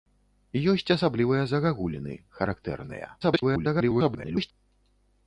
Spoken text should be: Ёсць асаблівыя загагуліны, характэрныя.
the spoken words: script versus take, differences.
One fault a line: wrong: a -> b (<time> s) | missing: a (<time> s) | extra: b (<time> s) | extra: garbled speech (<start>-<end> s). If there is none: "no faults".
extra: garbled speech (3.2-4.5 s)